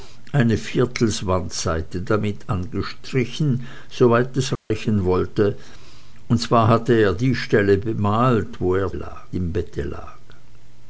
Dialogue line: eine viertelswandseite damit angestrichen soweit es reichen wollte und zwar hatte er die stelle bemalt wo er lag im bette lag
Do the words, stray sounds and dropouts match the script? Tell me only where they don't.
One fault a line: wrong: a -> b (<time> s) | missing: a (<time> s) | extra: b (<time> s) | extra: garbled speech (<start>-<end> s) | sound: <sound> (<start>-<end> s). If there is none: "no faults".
sound: dropout (4.6-4.7 s)